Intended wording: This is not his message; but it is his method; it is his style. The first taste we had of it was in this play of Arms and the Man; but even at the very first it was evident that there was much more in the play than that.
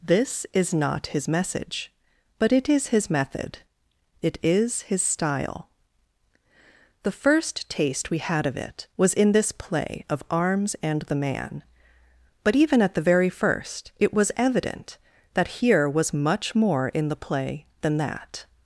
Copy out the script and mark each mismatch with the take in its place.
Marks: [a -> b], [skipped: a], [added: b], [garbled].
This is not his message; but it is his method; it is his style. The first taste we had of it was in this play of Arms and the Man; but even at the very first it was evident that [there -> here] was much more in the play than that.